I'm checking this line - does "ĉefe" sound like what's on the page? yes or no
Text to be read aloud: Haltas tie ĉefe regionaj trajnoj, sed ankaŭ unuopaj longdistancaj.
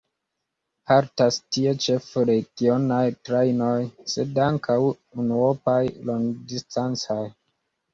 yes